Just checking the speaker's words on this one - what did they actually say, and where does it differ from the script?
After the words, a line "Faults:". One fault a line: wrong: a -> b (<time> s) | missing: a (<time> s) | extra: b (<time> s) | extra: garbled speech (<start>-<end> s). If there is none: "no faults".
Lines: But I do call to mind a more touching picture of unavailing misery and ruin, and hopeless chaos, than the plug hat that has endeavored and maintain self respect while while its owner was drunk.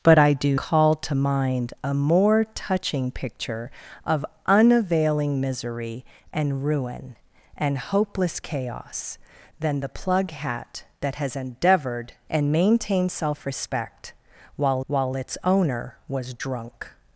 But I do call to mind a more touching picture of unavailing misery and ruin, and hopeless chaos, than the plug hat that has endeavored and maintain self respect while while its owner was drunk.
Faults:
no faults